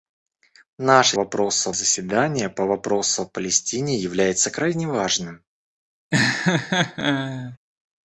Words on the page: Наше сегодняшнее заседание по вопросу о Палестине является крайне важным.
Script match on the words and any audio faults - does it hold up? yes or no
no